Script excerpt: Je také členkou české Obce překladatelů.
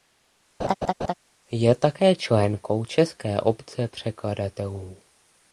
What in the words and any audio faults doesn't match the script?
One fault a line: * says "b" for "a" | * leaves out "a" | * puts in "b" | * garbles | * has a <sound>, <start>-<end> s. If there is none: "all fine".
* has a laugh, 0.6-1.1 s